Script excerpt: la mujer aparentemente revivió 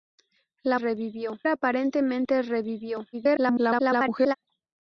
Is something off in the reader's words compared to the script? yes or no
yes